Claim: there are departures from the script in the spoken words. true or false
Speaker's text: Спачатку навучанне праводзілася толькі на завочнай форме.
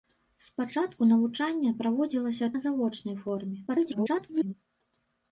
true